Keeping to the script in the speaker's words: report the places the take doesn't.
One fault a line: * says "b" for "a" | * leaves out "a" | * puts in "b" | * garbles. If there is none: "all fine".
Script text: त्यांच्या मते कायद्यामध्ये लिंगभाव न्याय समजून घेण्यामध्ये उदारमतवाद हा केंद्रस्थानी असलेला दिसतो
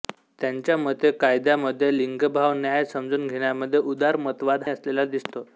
* leaves out "हा केंद्रस्थानी"